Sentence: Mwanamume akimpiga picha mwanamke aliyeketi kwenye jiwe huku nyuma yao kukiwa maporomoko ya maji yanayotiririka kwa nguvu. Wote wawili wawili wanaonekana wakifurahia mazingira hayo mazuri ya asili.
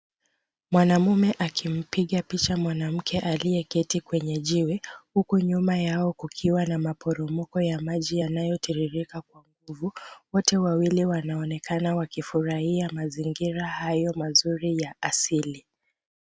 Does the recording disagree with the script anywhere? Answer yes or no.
yes